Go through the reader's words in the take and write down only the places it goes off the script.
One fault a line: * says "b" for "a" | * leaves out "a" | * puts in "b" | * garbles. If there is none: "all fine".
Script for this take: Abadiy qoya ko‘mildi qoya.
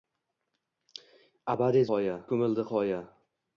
all fine